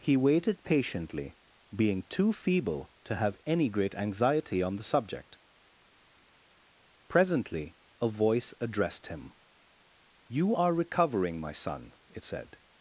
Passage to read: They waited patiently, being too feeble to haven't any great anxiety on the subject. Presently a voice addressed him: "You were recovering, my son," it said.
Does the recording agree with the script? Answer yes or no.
no